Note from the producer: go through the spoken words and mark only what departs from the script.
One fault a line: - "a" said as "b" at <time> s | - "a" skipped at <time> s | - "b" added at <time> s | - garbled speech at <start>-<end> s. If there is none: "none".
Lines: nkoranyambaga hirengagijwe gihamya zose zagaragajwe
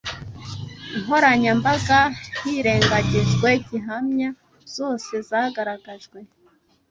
none